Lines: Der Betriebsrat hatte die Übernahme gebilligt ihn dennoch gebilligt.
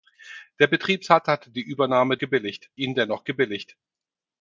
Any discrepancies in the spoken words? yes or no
no